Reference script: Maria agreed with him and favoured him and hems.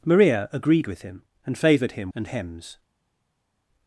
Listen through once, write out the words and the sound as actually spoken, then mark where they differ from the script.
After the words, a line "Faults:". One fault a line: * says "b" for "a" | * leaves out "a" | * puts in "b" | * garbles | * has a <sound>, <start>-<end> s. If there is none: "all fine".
Maria agreed with him and favoured him and hems.
Faults:
all fine